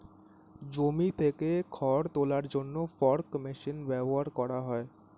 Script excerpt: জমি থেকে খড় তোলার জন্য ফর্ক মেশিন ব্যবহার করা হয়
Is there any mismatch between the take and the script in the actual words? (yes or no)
no